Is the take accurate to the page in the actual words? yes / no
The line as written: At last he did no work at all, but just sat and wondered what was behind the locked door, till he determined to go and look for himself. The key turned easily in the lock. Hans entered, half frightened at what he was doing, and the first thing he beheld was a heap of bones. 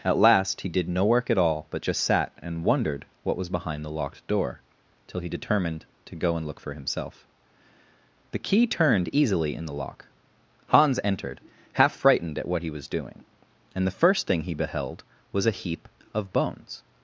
yes